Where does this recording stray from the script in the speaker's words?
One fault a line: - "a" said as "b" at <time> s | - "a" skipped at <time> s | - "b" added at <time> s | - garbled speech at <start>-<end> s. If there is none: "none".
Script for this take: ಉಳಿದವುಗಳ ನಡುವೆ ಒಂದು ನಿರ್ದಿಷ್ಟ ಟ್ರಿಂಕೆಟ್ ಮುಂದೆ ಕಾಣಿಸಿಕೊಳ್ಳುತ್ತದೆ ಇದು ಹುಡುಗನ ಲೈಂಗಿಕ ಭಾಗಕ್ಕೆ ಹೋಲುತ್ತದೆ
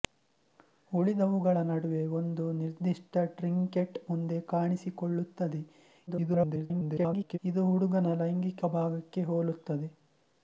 - garbled speech at 6.1-7.4 s